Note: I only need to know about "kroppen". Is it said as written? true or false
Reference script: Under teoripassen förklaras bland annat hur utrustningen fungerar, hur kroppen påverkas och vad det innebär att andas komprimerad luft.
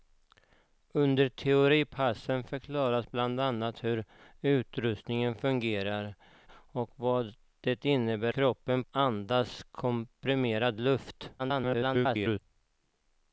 false